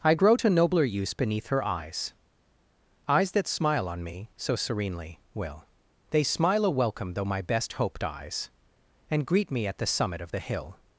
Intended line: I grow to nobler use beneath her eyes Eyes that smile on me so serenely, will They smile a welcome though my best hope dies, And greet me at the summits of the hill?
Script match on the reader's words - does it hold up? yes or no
no